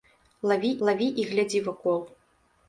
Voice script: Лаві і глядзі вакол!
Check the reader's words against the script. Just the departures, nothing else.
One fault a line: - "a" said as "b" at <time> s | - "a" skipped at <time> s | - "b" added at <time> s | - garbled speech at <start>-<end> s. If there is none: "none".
- "лаві" added at 0.9 s